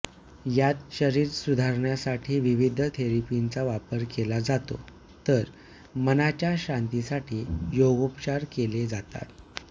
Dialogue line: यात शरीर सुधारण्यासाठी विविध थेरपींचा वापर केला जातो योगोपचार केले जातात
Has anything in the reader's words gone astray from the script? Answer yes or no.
yes